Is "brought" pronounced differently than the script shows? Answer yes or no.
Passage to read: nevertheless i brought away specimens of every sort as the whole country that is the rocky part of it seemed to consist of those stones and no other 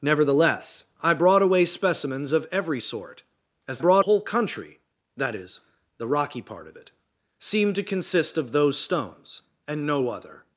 no